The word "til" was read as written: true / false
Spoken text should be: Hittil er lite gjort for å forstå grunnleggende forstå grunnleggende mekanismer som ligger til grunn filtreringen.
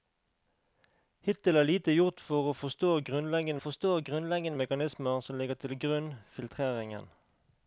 true